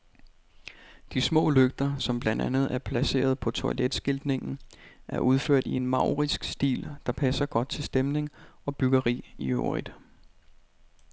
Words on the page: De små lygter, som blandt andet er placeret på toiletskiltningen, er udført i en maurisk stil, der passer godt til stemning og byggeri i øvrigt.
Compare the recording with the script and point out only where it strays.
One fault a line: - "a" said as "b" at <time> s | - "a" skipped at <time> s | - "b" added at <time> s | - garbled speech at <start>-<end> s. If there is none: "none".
none